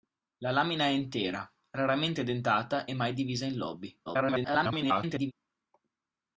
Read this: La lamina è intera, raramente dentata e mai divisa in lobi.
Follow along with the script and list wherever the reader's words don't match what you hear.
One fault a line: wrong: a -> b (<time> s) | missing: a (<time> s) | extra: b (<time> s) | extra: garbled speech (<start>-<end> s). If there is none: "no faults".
extra: garbled speech (4.1-5.3 s)